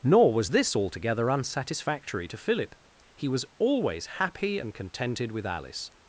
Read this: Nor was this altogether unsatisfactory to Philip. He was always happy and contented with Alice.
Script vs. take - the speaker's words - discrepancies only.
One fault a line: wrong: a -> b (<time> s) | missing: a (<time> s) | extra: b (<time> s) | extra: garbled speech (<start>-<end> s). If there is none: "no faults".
no faults